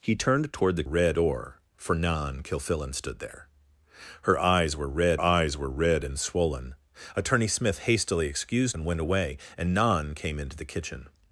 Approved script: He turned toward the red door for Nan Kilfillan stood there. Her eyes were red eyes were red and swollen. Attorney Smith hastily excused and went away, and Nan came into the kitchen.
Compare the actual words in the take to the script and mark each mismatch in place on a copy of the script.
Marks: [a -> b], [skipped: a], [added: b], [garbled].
He turned toward the red door for Nan Kilfillan stood there. Her eyes were red eyes were red and swollen. Attorney Smith hastily excused and went away, and Nan came into the kitchen.